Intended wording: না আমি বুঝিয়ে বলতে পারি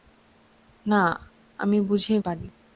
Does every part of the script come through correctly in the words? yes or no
no